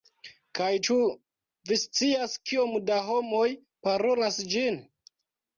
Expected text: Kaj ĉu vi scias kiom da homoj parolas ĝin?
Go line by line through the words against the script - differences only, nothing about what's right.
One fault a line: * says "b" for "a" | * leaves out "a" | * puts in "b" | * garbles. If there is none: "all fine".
all fine